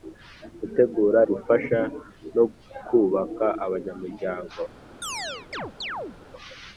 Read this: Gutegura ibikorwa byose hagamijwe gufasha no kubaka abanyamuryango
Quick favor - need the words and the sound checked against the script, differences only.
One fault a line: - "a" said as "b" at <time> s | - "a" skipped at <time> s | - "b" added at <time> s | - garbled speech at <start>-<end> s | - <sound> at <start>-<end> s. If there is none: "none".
- "ibikorwa byose hagamijwe" skipped at 1.2 s
- chirp at 5.0-6.2 s